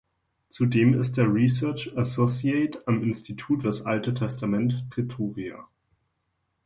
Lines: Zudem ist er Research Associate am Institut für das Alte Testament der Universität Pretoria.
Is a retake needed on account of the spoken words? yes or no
yes